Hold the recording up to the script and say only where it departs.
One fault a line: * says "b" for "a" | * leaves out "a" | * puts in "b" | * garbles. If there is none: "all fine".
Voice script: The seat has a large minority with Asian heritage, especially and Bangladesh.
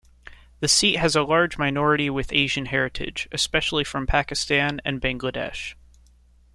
* puts in "from Pakistan"